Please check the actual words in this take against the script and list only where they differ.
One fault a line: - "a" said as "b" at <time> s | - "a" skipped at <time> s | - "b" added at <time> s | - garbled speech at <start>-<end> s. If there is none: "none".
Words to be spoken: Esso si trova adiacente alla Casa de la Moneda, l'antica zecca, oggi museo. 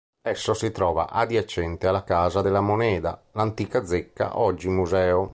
none